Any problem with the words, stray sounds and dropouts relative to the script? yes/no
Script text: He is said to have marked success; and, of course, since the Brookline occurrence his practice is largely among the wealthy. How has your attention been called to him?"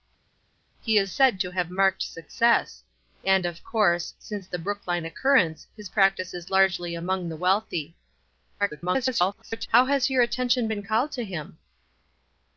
yes